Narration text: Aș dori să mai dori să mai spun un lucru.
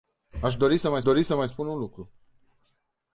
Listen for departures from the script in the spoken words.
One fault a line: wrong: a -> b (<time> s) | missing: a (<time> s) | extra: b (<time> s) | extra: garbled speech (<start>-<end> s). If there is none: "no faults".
no faults